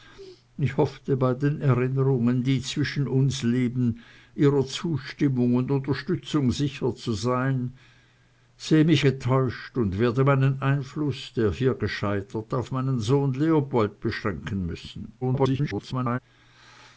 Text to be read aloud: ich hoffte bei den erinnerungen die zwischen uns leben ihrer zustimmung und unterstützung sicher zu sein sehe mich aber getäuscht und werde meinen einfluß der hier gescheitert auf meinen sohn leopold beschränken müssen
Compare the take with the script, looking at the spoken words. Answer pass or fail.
fail